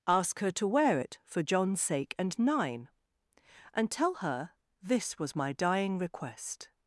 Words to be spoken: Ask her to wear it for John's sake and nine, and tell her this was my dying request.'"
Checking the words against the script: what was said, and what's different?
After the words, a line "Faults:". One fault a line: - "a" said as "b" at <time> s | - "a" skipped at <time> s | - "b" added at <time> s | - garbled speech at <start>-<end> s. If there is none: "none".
Ask her to wear it for John's sake and nine, and tell her this was my dying request.'"
Faults:
none